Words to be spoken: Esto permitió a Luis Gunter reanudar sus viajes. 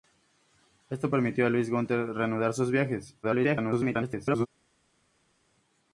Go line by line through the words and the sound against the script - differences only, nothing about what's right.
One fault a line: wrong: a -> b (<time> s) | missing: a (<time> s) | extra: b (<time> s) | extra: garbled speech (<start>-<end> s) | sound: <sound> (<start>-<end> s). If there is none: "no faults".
extra: garbled speech (3.2-4.5 s)